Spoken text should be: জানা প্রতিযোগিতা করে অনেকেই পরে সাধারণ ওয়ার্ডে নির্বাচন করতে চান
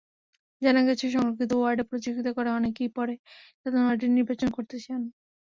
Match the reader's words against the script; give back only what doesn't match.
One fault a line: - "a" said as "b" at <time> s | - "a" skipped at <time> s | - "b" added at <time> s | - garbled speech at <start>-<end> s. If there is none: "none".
- "গেছে সংরক্ষিত ওয়ার্ডে" added at 0.9 s